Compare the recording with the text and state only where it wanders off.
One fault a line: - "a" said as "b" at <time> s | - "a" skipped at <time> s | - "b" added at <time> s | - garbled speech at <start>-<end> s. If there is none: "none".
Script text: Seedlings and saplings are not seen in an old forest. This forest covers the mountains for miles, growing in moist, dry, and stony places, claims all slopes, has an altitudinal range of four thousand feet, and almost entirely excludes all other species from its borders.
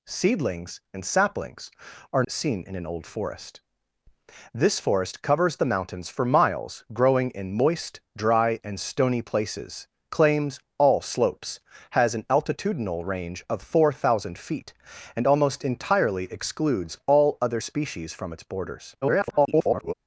- "not" skipped at 2.2 s
- garbled speech at 19.0-19.9 s